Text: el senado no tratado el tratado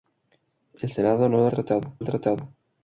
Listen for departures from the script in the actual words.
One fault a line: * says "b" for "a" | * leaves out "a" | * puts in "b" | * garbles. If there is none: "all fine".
all fine